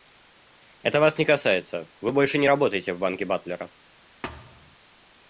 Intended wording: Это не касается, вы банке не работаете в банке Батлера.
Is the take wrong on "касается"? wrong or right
right